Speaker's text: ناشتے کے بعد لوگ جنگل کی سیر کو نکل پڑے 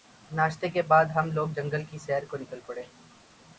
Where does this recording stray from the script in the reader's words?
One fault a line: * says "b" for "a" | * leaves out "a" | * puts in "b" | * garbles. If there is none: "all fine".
* puts in "ہم"